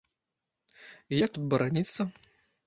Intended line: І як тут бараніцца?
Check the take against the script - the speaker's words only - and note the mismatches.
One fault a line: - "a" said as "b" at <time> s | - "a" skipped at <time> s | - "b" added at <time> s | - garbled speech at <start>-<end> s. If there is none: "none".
none